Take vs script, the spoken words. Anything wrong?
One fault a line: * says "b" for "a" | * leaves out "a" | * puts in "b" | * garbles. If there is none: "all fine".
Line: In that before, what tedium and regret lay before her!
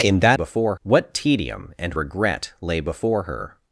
all fine